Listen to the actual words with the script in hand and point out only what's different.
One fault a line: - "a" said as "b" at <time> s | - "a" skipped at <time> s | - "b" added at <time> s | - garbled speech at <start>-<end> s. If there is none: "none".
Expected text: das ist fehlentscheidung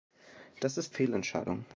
none